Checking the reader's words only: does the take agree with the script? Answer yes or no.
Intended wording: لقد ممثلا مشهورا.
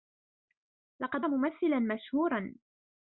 yes